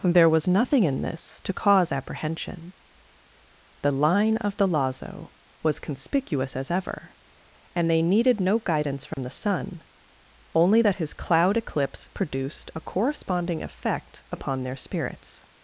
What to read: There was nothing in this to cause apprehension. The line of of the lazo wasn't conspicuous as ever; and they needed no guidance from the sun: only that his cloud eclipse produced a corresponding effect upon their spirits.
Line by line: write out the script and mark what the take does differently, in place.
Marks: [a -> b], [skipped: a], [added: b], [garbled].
There was nothing in this to cause apprehension. The line of [skipped: of] the lazo [wasn't -> was] conspicuous as ever; and they needed no guidance from the sun: only that his cloud eclipse produced a corresponding effect upon their spirits.